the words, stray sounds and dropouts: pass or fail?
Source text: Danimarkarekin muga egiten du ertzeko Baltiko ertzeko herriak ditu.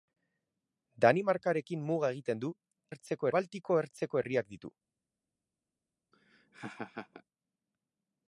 fail